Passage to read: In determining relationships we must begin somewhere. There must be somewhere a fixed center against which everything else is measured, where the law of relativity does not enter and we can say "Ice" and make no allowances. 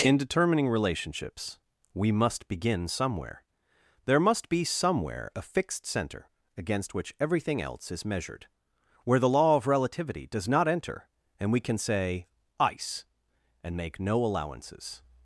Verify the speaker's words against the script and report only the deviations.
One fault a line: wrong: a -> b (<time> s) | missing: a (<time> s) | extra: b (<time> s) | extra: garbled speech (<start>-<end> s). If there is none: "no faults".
no faults